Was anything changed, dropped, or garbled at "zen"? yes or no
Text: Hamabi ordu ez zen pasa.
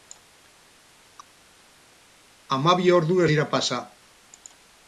yes